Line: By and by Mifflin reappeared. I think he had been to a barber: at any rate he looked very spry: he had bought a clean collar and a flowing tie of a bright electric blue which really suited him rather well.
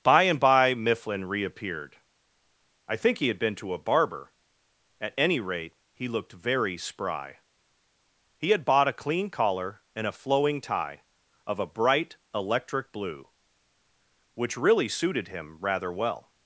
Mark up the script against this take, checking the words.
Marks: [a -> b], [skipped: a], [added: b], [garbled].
By and by Mifflin reappeared. I think he had been to a barber: at any rate he looked very spry: he had bought a clean collar and a flowing tie of a bright electric blue which really suited him rather well.